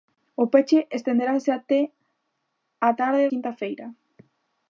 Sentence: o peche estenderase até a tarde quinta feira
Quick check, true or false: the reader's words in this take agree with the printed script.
true